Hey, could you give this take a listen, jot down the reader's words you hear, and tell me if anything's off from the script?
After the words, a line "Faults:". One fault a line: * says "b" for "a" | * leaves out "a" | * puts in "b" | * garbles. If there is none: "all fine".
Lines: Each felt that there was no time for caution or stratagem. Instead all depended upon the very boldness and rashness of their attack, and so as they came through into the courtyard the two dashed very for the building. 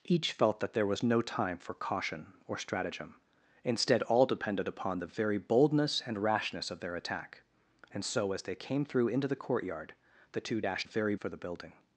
Each felt that there was no time for caution or stratagem. Instead all depended upon the very boldness and rashness of their attack, and so as they came through into the courtyard the two dashed very for the building.
Faults:
all fine